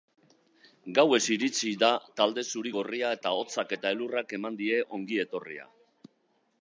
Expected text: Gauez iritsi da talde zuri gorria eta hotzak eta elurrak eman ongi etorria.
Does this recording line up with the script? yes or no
no